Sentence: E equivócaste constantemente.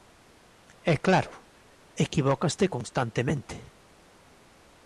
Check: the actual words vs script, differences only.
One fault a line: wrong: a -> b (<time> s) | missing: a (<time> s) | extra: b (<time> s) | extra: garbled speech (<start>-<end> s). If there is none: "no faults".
extra: claro (1.0 s)